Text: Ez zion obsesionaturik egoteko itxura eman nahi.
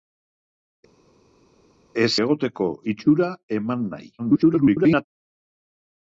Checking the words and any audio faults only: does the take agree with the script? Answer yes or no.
no